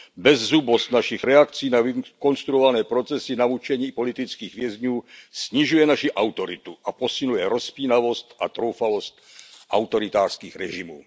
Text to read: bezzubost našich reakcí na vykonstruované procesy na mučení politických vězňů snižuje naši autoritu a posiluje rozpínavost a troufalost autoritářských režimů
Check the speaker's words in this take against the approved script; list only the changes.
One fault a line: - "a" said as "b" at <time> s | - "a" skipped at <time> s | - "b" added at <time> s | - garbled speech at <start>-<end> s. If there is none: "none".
none